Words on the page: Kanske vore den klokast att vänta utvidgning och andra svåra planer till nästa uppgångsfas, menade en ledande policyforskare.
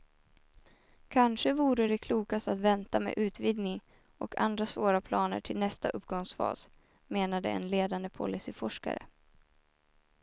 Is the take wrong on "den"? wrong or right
wrong